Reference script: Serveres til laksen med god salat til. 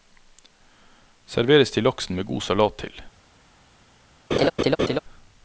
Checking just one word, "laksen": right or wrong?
right